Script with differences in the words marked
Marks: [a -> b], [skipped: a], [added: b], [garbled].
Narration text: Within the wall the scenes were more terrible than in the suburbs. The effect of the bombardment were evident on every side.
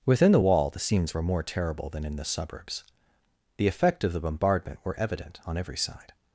Within the wall the scenes were more terrible than in the suburbs. The effect of the bombardment were evident on every side.